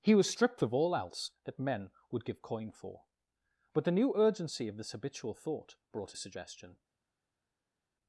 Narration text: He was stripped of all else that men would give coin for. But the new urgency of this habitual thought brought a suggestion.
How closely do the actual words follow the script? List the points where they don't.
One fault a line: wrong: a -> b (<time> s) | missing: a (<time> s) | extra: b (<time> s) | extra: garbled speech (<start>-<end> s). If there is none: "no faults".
no faults